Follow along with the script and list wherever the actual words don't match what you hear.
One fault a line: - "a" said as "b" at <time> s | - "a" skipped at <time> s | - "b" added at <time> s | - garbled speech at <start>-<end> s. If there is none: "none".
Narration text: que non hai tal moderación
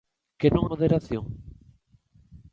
- "hai tal" skipped at 0.7 s